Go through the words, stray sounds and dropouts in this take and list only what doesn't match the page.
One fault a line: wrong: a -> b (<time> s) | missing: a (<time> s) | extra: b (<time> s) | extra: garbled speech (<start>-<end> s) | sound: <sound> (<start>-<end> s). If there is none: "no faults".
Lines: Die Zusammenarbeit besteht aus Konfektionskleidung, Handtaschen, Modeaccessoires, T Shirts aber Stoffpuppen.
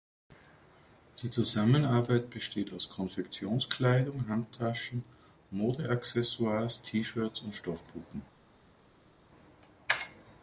wrong: aber -> und (7.4 s)